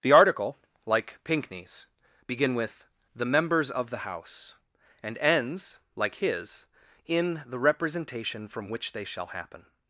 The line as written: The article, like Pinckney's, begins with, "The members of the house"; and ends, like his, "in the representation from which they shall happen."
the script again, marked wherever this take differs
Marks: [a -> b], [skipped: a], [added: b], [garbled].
The article, like Pinckney's, [begins -> begin] with, "The members of the house"; and ends, like his, "in the representation from which they shall happen."